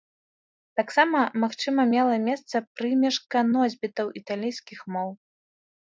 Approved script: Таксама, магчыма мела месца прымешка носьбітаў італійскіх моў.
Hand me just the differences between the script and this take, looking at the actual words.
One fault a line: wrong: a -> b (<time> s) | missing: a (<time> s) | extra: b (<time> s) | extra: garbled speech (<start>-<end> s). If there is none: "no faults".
no faults